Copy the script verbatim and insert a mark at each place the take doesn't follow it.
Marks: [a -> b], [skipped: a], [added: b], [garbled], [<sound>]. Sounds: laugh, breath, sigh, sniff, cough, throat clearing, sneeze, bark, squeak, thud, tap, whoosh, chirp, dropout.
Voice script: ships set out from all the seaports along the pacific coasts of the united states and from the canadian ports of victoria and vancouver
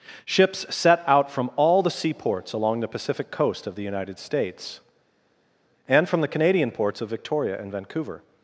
ships set out from all the seaports along the pacific [coasts -> coast] of the united states and from the canadian ports of victoria and vancouver